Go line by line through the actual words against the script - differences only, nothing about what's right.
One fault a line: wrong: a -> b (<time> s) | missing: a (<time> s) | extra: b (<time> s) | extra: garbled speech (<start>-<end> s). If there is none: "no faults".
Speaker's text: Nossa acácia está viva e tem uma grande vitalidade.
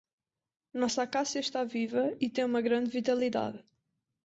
no faults